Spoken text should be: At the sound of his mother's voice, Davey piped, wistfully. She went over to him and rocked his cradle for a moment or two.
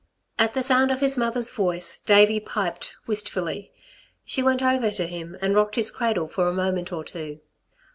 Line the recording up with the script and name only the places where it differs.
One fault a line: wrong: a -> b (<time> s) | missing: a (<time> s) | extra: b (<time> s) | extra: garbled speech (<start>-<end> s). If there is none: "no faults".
no faults